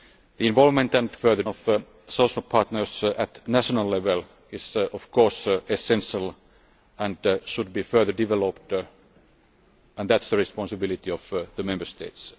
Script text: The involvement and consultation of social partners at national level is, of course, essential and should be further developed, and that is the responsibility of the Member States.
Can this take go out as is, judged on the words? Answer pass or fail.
fail